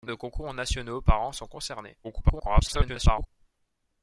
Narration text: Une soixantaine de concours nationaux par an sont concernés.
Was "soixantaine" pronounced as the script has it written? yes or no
no